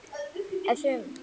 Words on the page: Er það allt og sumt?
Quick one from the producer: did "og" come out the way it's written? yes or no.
no